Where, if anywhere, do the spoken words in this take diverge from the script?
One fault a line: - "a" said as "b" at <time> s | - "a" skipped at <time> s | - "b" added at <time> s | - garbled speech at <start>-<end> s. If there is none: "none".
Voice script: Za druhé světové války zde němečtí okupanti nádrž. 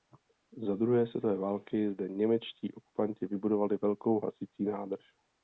- "vybudovali velkou hasicí" added at 3.3 s